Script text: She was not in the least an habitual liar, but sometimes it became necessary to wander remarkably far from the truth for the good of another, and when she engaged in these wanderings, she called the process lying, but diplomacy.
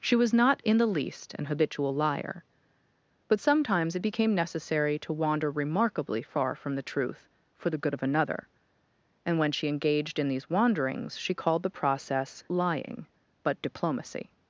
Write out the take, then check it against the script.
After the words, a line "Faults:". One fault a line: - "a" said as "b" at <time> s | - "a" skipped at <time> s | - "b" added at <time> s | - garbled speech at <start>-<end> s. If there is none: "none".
She was not in the least an habitual liar, but sometimes it became necessary to wander remarkably far from the truth for the good of another, and when she engaged in these wanderings, she called the process lying, but diplomacy.
Faults:
none